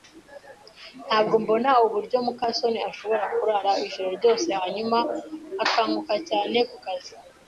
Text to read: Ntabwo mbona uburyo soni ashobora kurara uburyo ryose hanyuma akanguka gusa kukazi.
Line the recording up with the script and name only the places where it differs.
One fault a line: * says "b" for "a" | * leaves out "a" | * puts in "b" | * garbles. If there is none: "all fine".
* puts in "muka"
* says "ijoro" for "uburyo"
* says "cyane" for "gusa"